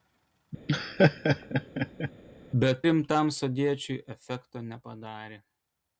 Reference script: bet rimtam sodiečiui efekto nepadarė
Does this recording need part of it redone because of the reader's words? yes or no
no